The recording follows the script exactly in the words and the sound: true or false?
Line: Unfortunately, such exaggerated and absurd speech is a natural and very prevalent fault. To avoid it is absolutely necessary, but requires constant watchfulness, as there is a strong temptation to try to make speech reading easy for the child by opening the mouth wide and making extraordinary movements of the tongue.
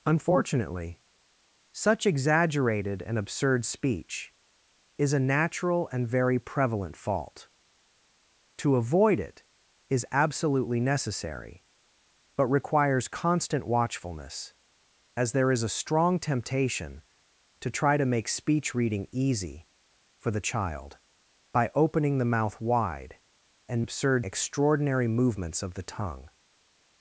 false